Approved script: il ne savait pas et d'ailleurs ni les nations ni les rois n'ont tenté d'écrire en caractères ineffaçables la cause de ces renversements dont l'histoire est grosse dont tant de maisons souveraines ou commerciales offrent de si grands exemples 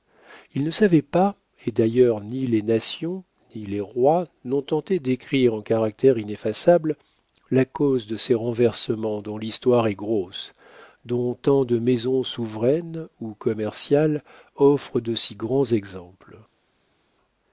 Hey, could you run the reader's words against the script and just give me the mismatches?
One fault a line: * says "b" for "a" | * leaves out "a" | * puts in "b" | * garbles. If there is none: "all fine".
all fine